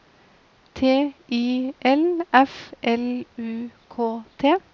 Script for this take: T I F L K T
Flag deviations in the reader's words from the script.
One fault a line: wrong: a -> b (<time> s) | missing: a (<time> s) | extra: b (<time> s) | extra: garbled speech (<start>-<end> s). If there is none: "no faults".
extra: L (1.8 s)
extra: U (3.4 s)